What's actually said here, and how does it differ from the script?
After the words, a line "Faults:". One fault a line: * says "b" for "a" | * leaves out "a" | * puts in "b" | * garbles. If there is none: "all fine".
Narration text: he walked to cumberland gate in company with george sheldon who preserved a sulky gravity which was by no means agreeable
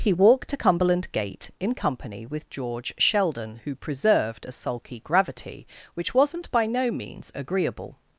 he walked to cumberland gate in company with george sheldon who preserved a sulky gravity which wasn't by no means agreeable
Faults:
* says "wasn't" for "was"